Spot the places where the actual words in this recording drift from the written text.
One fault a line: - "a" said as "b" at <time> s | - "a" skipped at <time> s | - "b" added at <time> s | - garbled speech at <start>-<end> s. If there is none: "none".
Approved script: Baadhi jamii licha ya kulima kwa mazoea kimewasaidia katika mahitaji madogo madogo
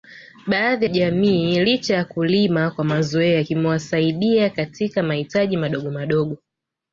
none